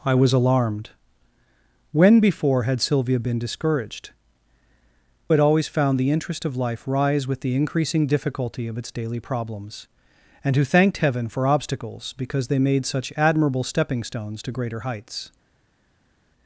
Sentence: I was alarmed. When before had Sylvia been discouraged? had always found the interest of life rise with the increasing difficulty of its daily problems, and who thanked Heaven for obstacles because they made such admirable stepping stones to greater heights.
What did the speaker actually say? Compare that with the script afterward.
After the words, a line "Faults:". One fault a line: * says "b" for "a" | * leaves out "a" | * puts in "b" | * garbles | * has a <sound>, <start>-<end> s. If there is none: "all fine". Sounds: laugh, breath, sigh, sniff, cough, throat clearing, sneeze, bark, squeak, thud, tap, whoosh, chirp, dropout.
I was alarmed. When before had Sylvia been discouraged? had always found the interest of life rise with the increasing difficulty of its daily problems, and who thanked Heaven for obstacles because they made such admirable stepping stones to greater heights.
Faults:
all fine